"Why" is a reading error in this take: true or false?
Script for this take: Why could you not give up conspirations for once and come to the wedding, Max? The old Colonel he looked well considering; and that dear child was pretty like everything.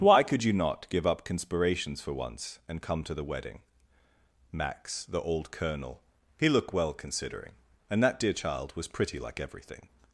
false